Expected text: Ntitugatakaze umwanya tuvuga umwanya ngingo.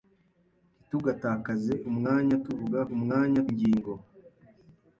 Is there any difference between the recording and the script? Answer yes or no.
no